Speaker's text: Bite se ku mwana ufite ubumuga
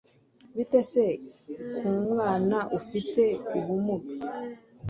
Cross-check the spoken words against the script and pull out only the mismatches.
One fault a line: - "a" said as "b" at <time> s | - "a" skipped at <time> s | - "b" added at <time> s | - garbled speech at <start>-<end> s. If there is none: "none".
none